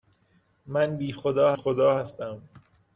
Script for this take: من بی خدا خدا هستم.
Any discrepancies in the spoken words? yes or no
no